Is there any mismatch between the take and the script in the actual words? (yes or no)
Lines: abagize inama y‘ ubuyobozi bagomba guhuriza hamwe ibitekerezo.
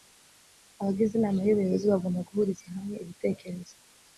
no